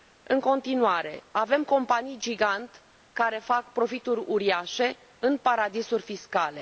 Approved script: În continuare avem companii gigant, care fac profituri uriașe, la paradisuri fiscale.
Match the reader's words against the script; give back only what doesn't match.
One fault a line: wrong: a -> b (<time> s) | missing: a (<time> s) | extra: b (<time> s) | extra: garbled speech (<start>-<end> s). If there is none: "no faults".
wrong: la -> în (5.2 s)